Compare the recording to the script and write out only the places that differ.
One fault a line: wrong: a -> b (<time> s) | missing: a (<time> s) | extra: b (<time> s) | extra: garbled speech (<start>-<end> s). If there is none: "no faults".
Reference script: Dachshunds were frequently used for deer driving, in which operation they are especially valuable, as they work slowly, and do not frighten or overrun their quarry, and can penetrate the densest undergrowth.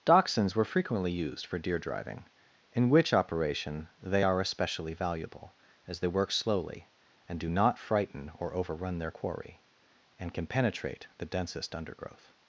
no faults